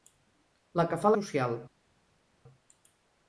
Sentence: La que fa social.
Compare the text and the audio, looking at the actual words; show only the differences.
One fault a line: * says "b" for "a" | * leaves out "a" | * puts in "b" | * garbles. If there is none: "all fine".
all fine